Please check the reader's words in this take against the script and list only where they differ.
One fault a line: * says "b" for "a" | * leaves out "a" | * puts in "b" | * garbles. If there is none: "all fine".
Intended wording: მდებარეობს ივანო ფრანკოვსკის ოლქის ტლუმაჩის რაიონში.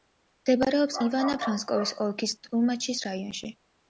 all fine